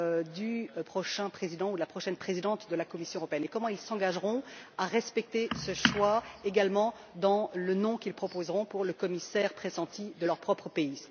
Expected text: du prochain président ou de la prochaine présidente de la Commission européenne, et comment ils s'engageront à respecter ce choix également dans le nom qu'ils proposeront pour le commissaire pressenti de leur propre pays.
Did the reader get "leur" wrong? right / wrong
right